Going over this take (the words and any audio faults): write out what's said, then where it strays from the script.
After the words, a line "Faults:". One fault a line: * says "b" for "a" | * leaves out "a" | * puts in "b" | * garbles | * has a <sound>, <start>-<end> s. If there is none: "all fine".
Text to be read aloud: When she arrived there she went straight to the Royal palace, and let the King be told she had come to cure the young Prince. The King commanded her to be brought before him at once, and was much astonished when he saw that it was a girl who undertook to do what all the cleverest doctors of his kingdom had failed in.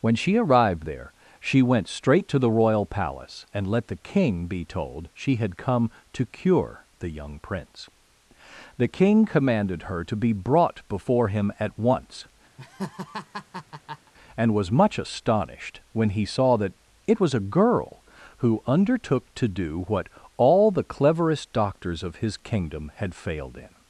When she arrived there she went straight to the Royal palace, and let the King be told she had come to cure the young Prince. The King commanded her to be brought before him at once, and was much astonished when he saw that it was a girl who undertook to do what all the cleverest doctors of his kingdom had failed in.
Faults:
* has a laugh, 12.6-14.1 s